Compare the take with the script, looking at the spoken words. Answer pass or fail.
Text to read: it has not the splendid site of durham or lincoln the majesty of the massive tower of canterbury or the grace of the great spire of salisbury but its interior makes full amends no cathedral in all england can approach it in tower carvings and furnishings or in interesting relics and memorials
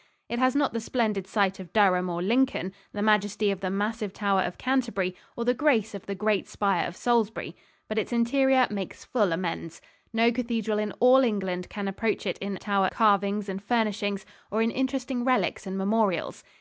pass